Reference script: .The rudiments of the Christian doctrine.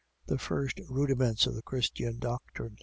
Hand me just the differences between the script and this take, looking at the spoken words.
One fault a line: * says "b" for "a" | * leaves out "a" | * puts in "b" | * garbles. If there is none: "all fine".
* puts in "first"